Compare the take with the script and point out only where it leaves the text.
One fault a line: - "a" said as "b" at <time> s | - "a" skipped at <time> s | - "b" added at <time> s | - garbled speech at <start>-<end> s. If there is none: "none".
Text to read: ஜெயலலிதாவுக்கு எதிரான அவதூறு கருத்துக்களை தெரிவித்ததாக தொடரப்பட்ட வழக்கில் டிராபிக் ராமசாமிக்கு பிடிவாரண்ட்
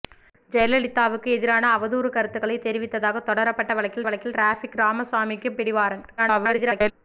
- "வழக்கில்" added at 4.0 s
- garbled speech at 6.2-6.9 s